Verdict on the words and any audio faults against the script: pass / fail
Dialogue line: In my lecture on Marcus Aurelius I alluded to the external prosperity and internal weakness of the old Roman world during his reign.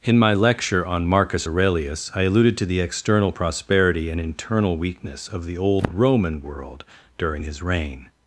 pass